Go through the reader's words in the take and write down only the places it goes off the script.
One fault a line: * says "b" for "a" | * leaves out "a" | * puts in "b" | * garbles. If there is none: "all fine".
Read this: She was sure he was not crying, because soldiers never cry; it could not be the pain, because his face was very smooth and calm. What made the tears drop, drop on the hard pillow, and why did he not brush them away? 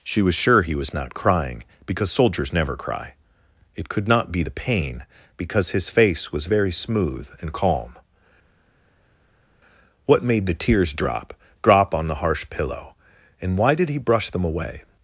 * says "harsh" for "hard"
* leaves out "not"